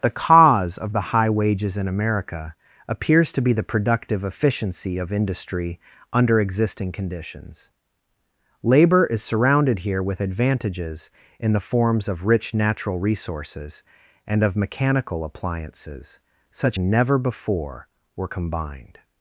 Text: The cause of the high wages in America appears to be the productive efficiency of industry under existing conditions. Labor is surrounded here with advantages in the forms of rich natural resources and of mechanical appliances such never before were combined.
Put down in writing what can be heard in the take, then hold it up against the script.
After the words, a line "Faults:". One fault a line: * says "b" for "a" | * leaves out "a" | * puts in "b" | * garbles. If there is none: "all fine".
The cause of the high wages in America appears to be the productive efficiency of industry under existing conditions. Labor is surrounded here with advantages in the forms of rich natural resources and of mechanical appliances such never before were combined.
Faults:
all fine